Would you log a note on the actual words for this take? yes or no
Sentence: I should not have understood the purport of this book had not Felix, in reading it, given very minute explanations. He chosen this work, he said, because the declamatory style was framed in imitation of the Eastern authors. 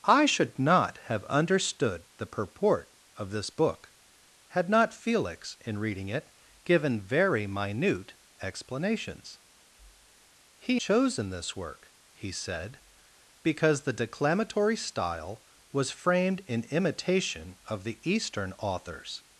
no